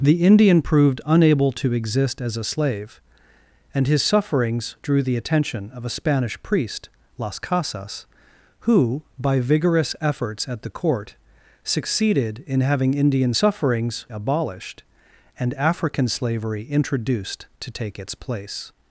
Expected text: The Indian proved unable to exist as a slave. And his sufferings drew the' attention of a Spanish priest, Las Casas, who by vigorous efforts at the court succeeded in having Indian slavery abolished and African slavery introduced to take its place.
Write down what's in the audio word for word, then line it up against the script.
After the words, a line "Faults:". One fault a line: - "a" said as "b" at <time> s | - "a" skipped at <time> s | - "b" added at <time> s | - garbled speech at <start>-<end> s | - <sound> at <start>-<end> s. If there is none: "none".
The Indian proved unable to exist as a slave. And his sufferings drew the' attention of a Spanish priest, Las Casas, who by vigorous efforts at the court succeeded in having Indian sufferings abolished and African slavery introduced to take its place.
Faults:
- "slavery" said as "sufferings" at 13.3 s